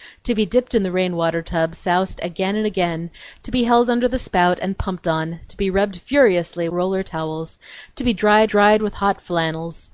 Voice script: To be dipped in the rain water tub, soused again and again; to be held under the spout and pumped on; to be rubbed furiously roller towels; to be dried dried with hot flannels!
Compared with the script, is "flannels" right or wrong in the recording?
right